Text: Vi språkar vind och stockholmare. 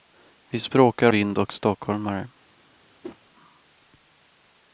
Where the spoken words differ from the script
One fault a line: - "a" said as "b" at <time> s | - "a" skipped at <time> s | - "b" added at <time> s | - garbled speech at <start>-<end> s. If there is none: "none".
none